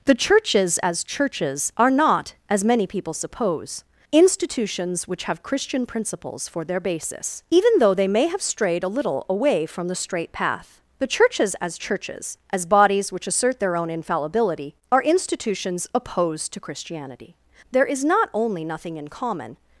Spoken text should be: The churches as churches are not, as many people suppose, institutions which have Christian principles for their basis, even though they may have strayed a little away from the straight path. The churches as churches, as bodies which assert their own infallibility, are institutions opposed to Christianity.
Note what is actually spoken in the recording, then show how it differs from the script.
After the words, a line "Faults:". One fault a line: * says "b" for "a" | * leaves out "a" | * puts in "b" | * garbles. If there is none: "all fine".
The churches as churches are not, as many people suppose, institutions which have Christian principles for their basis, even though they may have strayed a little away from the straight path. The churches as churches, as bodies which assert their own infallibility, are institutions opposed to Christianity. There is not only nothing in common
Faults:
* puts in "There is not only nothing in common"